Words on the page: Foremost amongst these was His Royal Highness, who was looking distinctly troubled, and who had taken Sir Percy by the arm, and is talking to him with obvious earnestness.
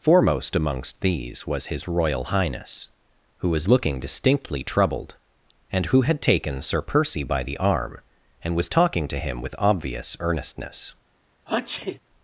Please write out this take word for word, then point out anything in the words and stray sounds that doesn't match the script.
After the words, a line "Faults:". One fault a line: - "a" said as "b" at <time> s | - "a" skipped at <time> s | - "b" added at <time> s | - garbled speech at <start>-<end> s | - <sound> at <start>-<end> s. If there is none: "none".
Foremost amongst these was His Royal Highness, who was looking distinctly troubled, and who had taken Sir Percy by the arm, and was talking to him with obvious earnestness.
Faults:
- "is" said as "was" at 8.6 s
- sneeze at 11.5-12.0 s